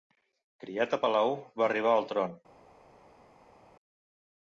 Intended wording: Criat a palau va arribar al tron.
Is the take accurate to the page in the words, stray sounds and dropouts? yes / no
yes